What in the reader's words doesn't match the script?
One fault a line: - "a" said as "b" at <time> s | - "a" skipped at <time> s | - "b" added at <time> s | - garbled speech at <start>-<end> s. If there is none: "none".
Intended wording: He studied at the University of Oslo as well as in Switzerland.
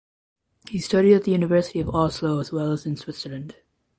none